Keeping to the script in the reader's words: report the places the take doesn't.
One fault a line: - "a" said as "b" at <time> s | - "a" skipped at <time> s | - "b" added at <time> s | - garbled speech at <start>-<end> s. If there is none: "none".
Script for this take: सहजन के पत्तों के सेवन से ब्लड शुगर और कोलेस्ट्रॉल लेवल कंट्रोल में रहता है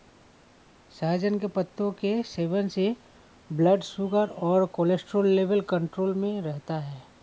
none